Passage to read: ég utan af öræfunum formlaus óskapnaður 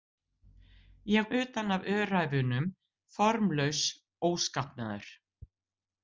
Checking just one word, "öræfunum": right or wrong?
right